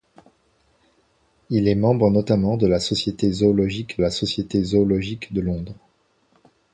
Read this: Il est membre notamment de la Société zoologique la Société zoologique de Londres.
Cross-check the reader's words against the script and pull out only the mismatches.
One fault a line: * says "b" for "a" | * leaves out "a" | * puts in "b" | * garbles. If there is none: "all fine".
all fine